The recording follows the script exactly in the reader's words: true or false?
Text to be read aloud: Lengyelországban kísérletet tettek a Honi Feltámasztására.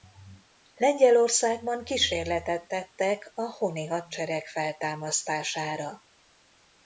false